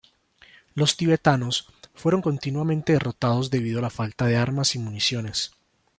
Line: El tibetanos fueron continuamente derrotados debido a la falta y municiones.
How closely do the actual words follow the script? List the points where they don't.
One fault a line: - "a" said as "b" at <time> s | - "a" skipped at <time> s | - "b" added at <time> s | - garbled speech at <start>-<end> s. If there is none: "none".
- "El" said as "Los" at 0.7 s
- "de armas" added at 4.3 s